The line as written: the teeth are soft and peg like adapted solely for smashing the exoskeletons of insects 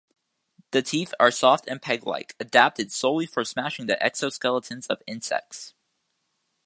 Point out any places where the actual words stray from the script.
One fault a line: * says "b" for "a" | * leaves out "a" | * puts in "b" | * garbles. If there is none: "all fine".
all fine